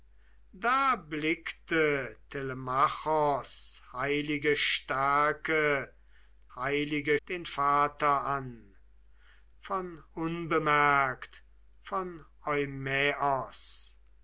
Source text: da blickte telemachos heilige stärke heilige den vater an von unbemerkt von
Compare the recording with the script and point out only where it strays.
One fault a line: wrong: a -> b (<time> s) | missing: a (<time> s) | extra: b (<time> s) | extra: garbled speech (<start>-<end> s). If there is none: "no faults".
no faults